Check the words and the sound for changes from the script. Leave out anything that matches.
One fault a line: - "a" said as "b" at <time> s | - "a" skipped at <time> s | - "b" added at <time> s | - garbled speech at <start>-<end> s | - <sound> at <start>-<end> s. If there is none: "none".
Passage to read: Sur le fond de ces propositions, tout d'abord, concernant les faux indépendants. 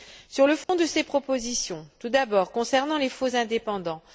- dropout at 0.6-0.7 s